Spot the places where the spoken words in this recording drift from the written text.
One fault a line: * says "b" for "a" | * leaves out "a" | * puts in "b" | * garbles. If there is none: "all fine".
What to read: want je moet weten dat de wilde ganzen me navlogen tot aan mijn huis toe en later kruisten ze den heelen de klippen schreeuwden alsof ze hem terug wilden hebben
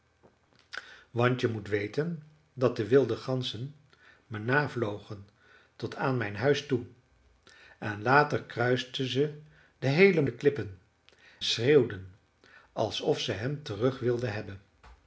all fine